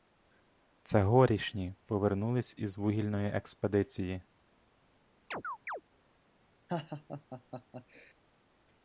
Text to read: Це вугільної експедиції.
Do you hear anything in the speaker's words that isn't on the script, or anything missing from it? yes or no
yes